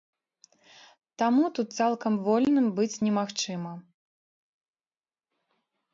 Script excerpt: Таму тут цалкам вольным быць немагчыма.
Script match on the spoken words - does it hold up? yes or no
yes